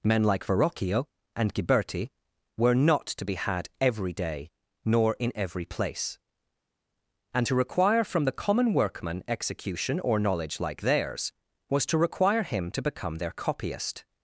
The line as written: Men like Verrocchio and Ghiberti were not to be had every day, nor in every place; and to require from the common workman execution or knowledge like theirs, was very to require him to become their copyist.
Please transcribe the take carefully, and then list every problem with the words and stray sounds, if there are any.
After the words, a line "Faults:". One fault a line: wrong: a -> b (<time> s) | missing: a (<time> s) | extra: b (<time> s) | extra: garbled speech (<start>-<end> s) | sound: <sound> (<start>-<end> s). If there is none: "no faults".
Men like Verrocchio and Ghiberti were not to be had every day, nor in every place; and to require from the common workman execution or knowledge like theirs, was to require him to become their copyist.
Faults:
missing: very (11.8 s)